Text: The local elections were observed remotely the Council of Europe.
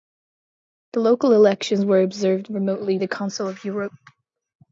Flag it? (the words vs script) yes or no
no